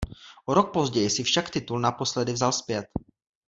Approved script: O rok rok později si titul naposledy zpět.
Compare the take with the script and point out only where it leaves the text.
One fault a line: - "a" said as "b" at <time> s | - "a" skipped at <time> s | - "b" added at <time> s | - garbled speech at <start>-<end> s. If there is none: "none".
- "rok" skipped at 0.7 s
- "však" added at 1.2 s
- "vzal" added at 2.3 s